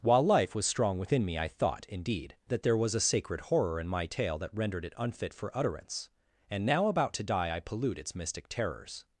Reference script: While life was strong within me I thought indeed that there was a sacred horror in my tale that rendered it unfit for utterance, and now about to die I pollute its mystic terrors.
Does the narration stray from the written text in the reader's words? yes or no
no